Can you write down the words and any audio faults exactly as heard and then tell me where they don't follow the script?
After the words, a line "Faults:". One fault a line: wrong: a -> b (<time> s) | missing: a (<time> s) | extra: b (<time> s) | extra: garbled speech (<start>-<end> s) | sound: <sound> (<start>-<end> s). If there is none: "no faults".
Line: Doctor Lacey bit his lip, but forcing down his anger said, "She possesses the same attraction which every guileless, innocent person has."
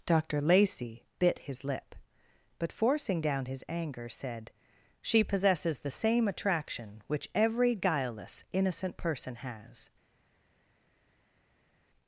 Doctor Lacey bit his lip, but forcing down his anger said, "She possesses the same attraction which every guileless, innocent person has."
Faults:
no faults